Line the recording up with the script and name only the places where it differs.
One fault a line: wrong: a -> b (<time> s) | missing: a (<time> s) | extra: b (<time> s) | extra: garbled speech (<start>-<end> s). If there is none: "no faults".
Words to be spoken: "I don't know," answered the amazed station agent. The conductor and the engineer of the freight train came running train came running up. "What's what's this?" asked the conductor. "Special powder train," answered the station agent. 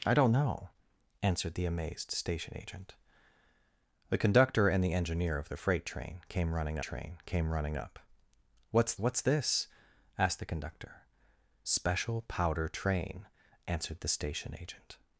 no faults